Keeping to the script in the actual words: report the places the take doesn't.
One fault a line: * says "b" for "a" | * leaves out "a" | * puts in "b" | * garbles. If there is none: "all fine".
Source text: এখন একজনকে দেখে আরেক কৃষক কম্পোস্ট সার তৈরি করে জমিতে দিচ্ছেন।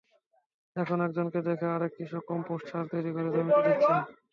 all fine